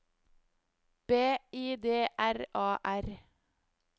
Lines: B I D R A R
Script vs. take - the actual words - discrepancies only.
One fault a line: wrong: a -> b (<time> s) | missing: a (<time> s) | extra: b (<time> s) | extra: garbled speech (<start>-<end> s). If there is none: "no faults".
no faults